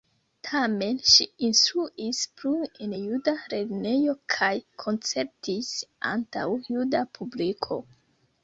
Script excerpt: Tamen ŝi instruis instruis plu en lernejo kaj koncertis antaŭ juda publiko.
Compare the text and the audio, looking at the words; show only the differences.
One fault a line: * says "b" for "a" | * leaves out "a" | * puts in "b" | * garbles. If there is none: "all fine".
* leaves out "instruis"
* puts in "juda"